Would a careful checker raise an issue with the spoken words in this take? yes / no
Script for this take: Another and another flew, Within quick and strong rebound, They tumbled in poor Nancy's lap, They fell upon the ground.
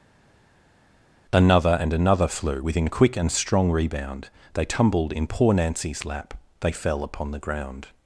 no